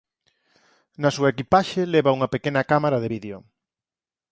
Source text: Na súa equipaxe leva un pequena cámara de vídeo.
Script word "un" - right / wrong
wrong